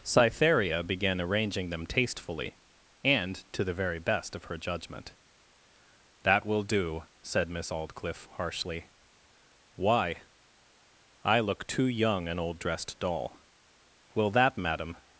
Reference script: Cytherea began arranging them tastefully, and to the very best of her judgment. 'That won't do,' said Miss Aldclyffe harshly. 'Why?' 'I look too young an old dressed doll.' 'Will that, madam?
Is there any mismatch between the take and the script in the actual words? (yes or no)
yes